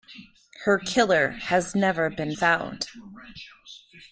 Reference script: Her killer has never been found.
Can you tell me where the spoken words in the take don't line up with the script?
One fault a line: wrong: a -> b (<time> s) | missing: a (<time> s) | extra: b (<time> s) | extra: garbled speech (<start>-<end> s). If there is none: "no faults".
no faults